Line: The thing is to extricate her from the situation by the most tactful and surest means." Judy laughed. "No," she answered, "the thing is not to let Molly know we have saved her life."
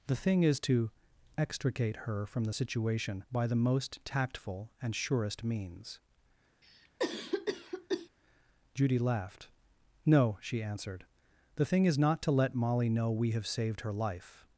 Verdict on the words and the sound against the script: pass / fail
fail